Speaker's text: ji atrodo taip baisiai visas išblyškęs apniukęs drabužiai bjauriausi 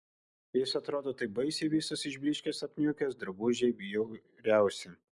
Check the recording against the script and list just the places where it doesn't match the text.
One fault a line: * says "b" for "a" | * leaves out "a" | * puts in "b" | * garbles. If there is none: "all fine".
* says "jis" for "ji"